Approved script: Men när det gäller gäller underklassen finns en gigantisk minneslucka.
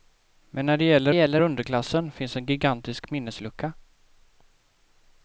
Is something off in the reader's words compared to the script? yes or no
no